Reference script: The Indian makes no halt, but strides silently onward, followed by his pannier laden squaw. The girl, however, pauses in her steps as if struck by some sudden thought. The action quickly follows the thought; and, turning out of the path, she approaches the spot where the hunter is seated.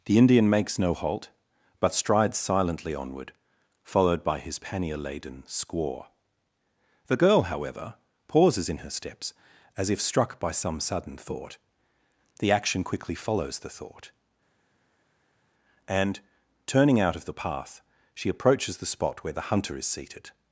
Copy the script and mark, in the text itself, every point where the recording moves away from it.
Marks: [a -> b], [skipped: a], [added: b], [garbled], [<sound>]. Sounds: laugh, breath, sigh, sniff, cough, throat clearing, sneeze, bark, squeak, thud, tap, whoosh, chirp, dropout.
The Indian makes no halt, but strides silently onward, followed by his pannier laden squaw. The girl, however, pauses in her steps as if struck by some sudden thought. The action quickly follows the thought; and, turning out of the path, she approaches the spot where the hunter is seated.